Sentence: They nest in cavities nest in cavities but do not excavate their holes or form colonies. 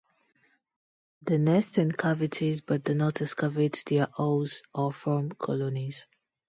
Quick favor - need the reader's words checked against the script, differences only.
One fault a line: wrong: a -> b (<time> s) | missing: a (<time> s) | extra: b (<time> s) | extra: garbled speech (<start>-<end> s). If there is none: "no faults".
missing: nest in cavities (2.6 s)